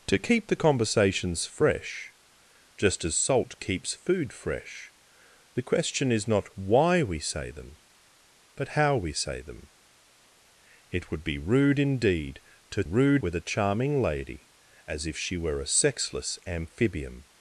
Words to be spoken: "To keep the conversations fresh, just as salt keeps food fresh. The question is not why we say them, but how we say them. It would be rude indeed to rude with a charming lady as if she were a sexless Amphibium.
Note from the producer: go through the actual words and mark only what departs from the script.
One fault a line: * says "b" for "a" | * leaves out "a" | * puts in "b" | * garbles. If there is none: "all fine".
all fine